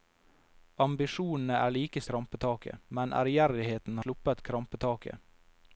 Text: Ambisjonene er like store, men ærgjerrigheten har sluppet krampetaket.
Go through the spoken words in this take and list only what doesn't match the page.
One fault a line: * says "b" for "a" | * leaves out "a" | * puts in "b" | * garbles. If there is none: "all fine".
* says "krampetaket" for "store"
* leaves out "har"